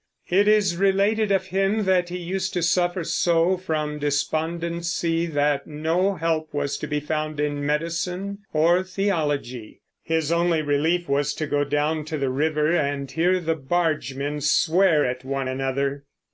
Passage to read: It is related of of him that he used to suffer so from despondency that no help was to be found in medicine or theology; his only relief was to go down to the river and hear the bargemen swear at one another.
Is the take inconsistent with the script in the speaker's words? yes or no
yes